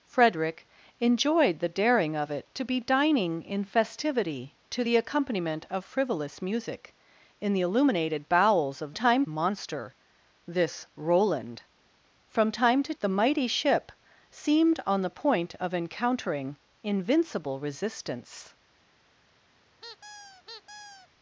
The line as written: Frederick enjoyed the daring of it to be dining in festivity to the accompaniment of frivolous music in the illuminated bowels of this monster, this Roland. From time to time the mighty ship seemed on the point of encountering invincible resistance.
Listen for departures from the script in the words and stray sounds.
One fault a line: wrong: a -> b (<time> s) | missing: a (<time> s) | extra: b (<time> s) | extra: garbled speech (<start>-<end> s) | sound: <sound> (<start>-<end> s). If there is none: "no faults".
wrong: this -> time (8.9 s)
missing: time (12.9 s)
sound: squeak (19.8-21.1 s)